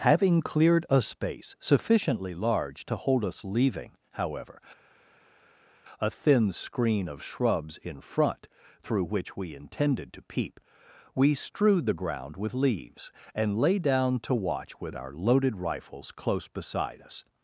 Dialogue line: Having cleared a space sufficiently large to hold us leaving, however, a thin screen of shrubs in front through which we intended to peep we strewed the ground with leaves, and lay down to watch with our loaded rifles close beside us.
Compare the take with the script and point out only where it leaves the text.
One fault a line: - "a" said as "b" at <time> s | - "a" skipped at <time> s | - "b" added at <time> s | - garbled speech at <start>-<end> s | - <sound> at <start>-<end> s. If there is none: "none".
none